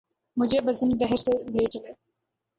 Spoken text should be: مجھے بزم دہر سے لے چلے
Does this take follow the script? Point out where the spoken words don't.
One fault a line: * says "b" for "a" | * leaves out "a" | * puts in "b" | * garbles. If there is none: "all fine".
all fine